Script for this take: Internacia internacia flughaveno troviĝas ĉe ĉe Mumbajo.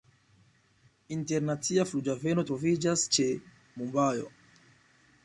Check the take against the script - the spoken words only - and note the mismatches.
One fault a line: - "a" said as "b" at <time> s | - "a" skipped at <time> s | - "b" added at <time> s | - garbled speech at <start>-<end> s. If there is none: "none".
- "internacia" skipped at 1.9 s
- "ĉe" skipped at 3.3 s